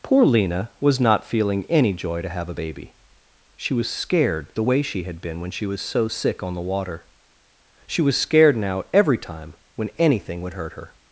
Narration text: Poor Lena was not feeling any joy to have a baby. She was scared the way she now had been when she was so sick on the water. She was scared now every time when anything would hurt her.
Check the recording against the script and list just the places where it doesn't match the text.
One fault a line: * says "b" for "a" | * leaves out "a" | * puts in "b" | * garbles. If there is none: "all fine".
* leaves out "now"